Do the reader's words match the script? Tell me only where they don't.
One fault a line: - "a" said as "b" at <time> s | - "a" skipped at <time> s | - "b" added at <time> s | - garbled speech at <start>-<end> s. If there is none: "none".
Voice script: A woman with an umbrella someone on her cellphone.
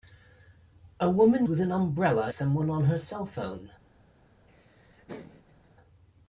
none